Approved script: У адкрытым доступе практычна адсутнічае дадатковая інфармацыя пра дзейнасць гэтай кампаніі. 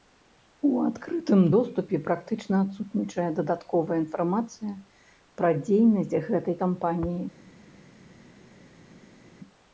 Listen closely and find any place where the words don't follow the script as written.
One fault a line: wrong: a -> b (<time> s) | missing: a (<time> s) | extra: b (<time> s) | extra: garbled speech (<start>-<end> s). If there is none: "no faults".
no faults